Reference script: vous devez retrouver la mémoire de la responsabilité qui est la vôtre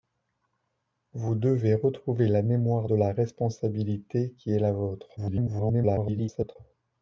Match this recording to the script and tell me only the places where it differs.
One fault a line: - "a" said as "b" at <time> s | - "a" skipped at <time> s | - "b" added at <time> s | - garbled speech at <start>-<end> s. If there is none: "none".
- garbled speech at 5.2-6.6 s